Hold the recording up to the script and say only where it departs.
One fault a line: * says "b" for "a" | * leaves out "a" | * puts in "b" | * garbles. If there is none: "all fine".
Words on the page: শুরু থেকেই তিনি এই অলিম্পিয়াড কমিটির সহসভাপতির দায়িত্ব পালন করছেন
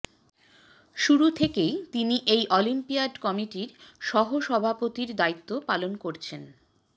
all fine